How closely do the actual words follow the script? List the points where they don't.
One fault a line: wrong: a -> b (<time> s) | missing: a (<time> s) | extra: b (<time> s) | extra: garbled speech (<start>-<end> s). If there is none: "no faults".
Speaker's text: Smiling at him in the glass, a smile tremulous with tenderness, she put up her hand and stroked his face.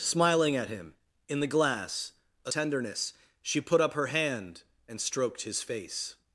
missing: smile tremulous with (2.5 s)